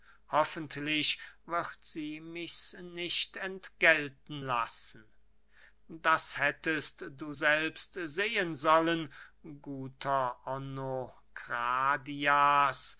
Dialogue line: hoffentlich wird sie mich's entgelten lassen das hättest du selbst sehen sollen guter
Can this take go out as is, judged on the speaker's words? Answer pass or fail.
fail